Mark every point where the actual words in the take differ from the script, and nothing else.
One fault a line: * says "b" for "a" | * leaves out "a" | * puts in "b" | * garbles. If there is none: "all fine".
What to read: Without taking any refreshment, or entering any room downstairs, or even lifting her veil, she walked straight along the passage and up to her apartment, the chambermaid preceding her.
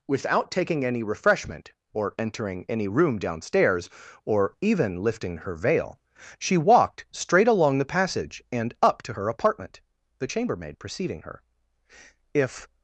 * puts in "If"